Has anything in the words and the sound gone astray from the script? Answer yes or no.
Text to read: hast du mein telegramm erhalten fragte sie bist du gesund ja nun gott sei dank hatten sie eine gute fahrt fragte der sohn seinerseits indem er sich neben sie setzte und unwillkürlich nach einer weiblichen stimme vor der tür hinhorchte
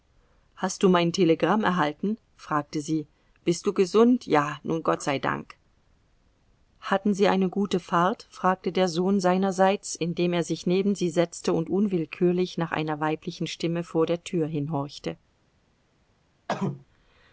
yes